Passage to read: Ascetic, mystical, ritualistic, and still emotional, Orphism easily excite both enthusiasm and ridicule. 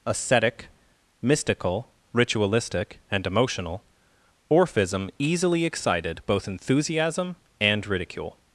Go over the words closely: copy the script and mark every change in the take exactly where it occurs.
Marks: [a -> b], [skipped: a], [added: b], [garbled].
Ascetic, mystical, ritualistic, and [skipped: still] emotional, Orphism easily [excite -> excited] both enthusiasm and ridicule.